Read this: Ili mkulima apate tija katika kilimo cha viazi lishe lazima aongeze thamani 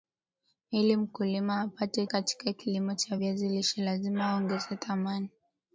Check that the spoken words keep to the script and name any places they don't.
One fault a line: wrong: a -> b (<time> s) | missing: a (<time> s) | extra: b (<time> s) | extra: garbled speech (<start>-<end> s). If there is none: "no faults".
missing: tija (2.1 s)